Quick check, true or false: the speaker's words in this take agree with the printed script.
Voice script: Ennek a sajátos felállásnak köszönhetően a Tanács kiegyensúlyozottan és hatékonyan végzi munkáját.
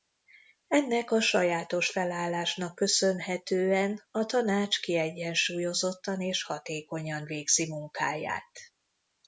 true